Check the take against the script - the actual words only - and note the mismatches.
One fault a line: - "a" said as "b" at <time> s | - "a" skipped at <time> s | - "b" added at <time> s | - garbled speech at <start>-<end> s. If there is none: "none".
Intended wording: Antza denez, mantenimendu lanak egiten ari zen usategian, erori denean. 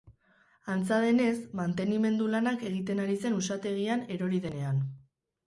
none